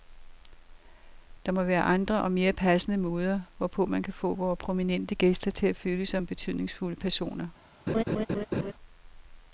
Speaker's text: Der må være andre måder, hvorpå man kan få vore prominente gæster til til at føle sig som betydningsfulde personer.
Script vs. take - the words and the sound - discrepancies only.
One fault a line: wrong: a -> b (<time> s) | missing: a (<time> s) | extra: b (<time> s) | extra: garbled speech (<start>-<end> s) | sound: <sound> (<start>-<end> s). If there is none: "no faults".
extra: og mere passende (2.2 s)
missing: til (5.7 s)
sound: laugh (7.9-8.7 s)